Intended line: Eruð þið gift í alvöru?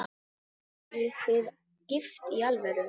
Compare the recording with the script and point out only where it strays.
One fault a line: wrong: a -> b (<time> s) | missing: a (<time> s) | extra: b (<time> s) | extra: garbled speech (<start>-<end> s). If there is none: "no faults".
no faults